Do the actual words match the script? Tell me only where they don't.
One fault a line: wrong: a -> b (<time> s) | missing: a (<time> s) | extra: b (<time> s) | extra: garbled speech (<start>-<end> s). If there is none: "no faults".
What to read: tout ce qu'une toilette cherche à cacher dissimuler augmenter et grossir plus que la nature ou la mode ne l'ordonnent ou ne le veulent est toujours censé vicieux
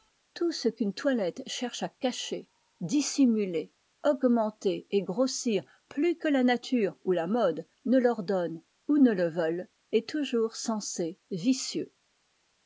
no faults